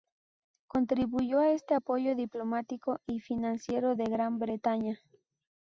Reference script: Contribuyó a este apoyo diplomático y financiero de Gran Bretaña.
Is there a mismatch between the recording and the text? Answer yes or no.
no